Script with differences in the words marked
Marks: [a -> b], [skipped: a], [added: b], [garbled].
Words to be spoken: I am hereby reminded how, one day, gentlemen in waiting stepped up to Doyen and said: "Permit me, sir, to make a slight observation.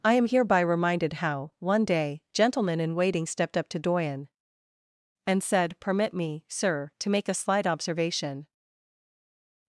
I am hereby reminded how, one day, gentlemen in waiting stepped up to Doyen and said: "Permit me, sir, to make a slight observation.